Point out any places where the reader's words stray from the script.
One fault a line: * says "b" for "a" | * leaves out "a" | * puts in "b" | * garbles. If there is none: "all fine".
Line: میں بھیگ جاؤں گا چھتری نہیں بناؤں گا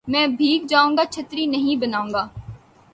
all fine